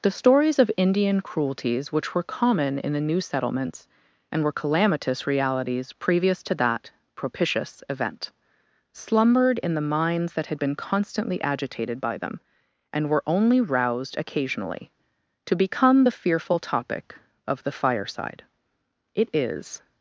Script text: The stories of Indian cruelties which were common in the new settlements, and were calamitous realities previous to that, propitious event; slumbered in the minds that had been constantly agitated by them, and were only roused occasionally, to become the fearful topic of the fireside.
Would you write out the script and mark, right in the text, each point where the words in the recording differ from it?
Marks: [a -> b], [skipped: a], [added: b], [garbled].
The stories of Indian cruelties which were common in the new settlements, and were calamitous realities previous to that, propitious event; slumbered in the minds that had been constantly agitated by them, and were only roused occasionally, to become the fearful topic of the fireside. [added: It is]